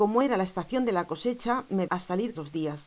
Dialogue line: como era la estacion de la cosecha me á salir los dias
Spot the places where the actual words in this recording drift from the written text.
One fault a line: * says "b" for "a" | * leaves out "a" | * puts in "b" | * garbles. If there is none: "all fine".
all fine